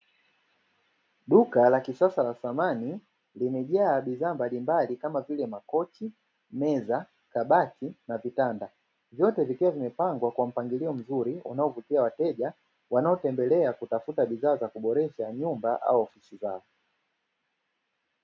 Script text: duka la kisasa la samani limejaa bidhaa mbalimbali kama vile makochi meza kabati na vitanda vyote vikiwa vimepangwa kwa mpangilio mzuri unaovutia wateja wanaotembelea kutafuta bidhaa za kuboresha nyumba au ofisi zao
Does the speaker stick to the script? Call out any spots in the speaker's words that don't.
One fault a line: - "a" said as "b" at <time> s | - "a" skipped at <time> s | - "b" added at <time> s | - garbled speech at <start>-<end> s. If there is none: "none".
none